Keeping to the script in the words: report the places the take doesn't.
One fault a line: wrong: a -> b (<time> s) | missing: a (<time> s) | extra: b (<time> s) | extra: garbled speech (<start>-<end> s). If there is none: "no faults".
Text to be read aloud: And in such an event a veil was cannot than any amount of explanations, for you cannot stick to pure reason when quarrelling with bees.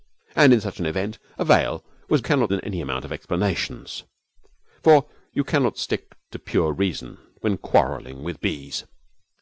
no faults